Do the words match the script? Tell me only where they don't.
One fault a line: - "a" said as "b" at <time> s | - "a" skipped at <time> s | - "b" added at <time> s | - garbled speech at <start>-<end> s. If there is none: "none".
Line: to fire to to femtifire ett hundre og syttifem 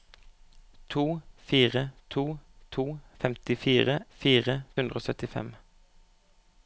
- "ett" said as "fire" at 4.1 s